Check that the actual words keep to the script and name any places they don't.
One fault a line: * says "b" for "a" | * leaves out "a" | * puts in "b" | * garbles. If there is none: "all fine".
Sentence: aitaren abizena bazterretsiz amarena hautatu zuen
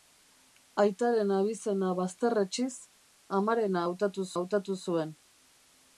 * puts in "hautatu"